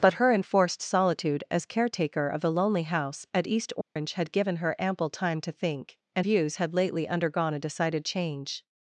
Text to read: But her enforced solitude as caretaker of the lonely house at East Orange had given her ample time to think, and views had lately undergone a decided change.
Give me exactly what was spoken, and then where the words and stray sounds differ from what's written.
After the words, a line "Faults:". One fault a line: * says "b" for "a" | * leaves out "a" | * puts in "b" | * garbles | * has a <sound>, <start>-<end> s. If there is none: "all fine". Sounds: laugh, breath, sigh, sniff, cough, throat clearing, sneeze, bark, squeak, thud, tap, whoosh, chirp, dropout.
But her enforced solitude as caretaker of the lonely house at East Orange had given her ample time to think, and views had lately undergone a decided change.
Faults:
* has a dropout, 3.8-4.0 s